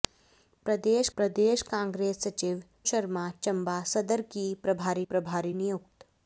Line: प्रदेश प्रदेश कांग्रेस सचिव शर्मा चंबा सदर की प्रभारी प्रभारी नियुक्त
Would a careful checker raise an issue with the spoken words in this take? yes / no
no